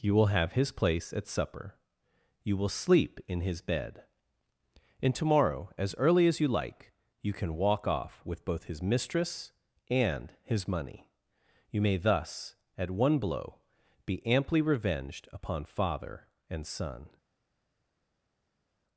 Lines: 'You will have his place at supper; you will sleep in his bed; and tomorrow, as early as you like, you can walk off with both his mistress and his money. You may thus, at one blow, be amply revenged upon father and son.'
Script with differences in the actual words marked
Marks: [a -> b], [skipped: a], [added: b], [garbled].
'You will have his place at supper; you will sleep in his bed; and tomorrow, as early as you like, you can walk off with both his mistress and his money. You may thus, at one blow, be amply revenged upon father and son.'